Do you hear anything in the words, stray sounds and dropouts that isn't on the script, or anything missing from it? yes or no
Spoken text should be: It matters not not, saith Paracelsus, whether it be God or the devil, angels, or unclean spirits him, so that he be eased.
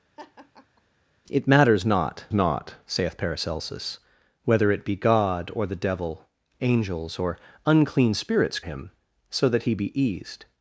yes